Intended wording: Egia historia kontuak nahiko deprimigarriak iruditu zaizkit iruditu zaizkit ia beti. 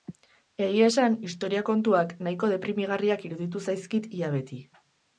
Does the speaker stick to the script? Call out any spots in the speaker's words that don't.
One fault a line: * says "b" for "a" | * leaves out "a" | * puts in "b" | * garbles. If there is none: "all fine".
* puts in "esan"
* leaves out "iruditu zaizkit"